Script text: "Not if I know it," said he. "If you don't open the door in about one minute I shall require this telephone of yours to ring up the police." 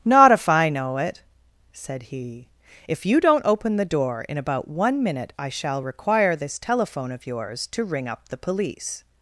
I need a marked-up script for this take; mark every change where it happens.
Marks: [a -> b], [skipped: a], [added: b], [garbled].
"Not if I know it," said he. "If you don't open the door in about one minute I shall require this telephone of yours to ring up the police."